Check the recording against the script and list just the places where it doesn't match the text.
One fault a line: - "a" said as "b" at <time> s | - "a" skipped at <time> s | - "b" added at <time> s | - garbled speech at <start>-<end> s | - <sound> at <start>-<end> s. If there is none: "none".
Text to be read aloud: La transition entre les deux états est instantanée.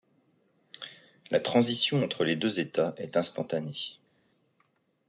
none